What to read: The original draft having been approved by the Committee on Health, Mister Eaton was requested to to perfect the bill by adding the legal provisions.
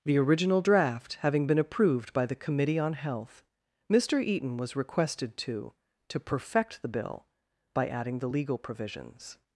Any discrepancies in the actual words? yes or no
no